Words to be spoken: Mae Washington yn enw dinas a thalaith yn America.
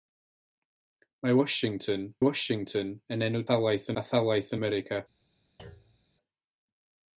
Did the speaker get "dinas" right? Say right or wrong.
wrong